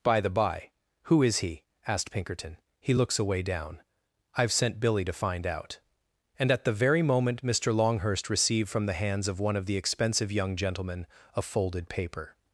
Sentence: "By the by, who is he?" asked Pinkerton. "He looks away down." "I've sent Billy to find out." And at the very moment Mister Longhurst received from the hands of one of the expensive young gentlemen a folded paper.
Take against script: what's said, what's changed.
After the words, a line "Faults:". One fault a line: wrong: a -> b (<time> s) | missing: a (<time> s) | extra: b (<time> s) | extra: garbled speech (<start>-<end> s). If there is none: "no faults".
"By the by, who is he?" asked Pinkerton. "He looks away down." "I've sent Billy to find out." And at the very moment Mister Longhurst received from the hands of one of the expensive young gentlemen a folded paper.
Faults:
no faults